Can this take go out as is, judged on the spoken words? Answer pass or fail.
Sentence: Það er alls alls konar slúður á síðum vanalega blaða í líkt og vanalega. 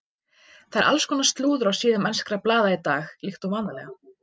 fail